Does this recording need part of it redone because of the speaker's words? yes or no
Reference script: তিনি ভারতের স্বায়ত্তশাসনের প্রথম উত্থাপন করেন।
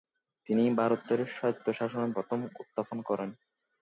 no